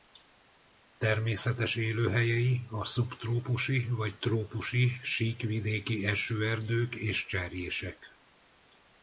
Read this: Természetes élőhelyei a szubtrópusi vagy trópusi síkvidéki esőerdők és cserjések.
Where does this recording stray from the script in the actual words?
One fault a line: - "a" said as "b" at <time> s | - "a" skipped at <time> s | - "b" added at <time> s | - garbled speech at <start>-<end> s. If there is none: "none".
none